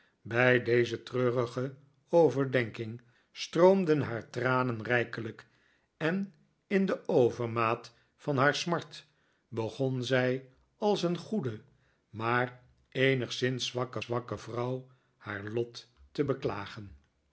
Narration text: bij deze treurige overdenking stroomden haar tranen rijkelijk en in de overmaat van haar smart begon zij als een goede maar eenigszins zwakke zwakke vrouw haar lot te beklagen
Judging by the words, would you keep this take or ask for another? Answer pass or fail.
pass